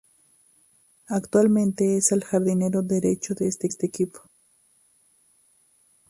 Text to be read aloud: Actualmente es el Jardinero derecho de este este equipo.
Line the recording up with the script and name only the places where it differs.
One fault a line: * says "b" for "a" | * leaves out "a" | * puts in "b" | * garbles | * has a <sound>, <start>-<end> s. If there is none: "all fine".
all fine